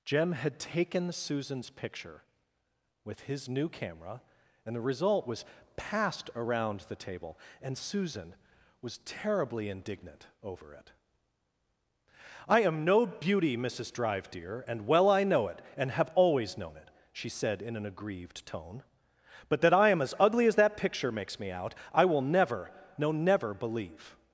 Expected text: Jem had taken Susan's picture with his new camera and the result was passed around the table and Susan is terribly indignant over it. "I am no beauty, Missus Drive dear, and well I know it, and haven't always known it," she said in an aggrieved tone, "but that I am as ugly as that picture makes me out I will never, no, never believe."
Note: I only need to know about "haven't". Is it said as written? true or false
false